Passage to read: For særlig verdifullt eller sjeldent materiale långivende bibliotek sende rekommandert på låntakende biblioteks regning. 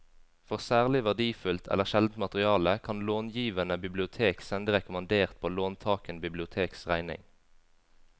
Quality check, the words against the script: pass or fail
fail